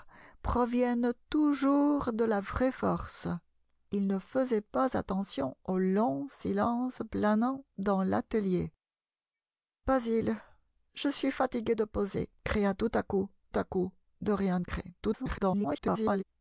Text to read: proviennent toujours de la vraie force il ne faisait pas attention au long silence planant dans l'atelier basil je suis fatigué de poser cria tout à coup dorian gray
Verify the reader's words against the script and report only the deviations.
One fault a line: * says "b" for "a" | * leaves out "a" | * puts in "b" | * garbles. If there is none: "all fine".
* puts in "à coup"
* garbles